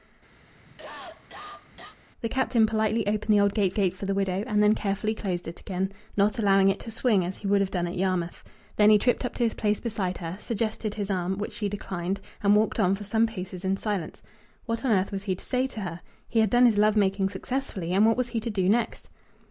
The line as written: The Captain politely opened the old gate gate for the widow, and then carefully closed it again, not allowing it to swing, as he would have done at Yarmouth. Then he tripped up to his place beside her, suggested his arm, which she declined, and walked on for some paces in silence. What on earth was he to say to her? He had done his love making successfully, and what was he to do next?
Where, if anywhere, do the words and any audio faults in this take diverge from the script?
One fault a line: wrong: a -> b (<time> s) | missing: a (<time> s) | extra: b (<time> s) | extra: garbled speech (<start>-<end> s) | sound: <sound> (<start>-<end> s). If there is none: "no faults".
sound: cough (0.4-2.0 s)